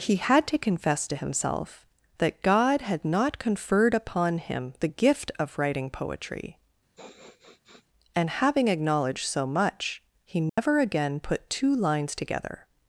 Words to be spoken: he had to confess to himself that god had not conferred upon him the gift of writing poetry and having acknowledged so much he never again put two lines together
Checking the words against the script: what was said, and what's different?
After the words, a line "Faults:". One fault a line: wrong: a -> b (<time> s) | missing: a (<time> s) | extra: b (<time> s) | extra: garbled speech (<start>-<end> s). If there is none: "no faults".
he had to confess to himself that god had not conferred upon him the gift of writing poetry and having acknowledged so much he never again put two lines together
Faults:
no faults